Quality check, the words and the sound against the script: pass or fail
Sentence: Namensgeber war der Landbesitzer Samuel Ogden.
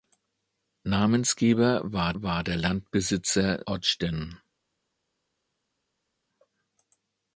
fail